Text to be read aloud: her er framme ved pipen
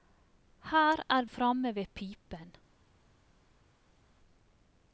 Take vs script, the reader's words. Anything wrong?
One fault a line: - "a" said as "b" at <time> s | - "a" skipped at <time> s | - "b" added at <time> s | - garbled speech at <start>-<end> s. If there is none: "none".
none